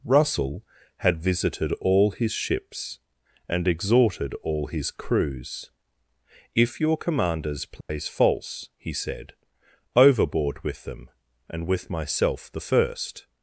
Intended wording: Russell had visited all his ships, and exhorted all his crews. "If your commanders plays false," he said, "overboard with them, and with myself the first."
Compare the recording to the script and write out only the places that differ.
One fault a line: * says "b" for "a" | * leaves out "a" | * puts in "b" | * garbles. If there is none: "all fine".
all fine